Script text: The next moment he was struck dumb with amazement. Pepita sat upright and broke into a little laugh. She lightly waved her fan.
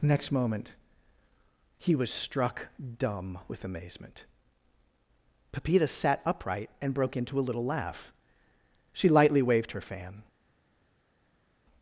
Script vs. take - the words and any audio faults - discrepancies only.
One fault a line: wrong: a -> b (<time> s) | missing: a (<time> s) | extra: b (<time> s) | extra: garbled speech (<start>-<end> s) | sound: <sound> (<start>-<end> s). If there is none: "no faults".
missing: The (0.0 s)